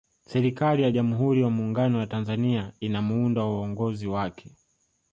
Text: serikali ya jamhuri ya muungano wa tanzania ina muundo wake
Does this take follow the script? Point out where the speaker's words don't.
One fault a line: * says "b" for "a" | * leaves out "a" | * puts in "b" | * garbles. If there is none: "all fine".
* puts in "wa uongozi"